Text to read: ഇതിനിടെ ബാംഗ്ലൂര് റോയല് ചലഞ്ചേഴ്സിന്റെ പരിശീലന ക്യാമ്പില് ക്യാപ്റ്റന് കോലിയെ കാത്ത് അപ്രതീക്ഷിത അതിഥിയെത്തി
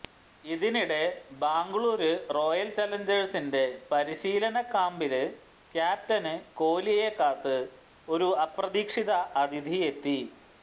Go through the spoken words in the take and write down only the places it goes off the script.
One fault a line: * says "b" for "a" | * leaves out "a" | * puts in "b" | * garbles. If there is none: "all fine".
* puts in "ഒരു"